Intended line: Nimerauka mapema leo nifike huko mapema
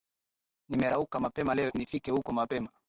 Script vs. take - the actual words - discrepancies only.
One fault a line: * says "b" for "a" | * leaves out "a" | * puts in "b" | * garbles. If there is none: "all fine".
all fine